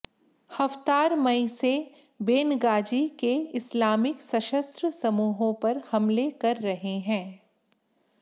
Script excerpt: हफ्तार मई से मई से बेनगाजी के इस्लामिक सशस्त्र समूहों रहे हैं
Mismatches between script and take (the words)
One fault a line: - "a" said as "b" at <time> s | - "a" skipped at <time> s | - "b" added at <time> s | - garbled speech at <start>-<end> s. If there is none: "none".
- "मई से" skipped at 1.7 s
- "पर हमले कर" added at 5.5 s